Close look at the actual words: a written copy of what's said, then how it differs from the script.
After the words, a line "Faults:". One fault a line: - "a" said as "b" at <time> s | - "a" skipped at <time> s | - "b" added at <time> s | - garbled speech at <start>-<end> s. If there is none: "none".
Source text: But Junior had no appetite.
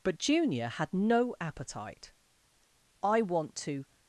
But Junior had no appetite. "I want to
Faults:
- "I want to" added at 3.0 s